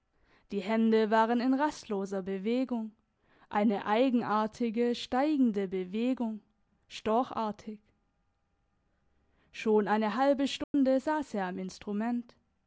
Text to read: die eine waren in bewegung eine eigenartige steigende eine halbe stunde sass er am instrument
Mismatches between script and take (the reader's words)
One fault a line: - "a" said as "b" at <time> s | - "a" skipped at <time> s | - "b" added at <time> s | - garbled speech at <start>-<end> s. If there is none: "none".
- "eine" said as "hände" at 0.6 s
- "rastloser" added at 1.5 s
- "bewegung storchartig schon" added at 5.7 s